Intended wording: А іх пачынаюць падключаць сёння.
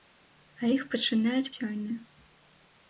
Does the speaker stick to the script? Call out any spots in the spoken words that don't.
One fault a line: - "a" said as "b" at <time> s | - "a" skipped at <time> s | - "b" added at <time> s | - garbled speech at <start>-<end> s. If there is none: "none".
- "падключаць" skipped at 1.5 s